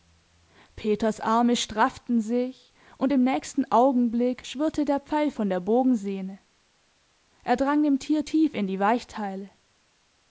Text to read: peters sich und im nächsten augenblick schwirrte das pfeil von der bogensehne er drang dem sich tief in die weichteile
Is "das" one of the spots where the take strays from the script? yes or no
yes